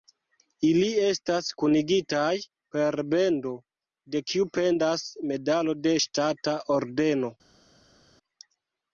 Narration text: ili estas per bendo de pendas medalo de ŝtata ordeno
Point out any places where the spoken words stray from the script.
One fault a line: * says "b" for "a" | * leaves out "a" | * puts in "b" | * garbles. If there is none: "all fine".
* puts in "kunigitaj"
* puts in "kiu"